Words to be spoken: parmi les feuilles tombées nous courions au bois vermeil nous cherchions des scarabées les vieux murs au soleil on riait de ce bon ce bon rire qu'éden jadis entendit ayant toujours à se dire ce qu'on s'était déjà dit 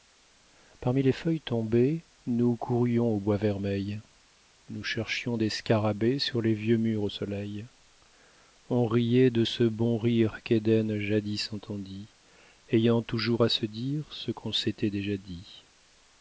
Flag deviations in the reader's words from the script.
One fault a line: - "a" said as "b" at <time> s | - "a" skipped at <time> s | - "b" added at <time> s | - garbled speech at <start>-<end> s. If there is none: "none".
- "sur" added at 6.2 s
- "ce bon" skipped at 10.0 s